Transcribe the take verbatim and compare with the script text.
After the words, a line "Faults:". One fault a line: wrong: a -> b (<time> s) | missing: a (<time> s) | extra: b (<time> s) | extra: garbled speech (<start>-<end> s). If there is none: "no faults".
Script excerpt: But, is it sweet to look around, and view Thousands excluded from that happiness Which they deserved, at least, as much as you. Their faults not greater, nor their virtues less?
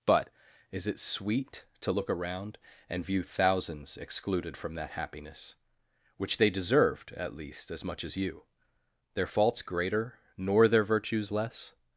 But, is it sweet to look around, and view Thousands excluded from that happiness Which they deserved, at least, as much as you. Their faults greater, nor their virtues less?
Faults:
missing: not (9.6 s)